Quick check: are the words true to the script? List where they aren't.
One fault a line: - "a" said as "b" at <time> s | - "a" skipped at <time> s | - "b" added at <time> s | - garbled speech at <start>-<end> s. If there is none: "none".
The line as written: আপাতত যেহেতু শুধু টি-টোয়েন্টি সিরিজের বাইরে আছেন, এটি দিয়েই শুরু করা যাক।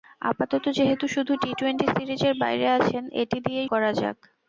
- "শুরু" skipped at 3.7 s